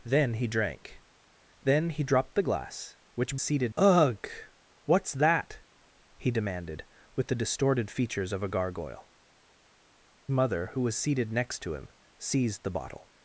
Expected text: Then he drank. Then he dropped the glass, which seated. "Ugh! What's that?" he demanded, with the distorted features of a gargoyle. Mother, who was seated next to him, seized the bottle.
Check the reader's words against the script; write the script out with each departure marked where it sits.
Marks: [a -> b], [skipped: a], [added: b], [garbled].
Then he drank. Then he dropped the glass, which seated. "Ugh! What's that?" he demanded, with the distorted features of a gargoyle. Mother, who was seated next to him, seized the bottle.